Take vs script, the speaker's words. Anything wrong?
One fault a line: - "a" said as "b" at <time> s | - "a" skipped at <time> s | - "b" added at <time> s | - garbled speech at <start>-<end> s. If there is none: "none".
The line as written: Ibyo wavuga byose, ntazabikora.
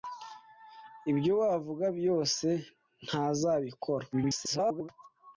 - garbled speech at 4.1-4.9 s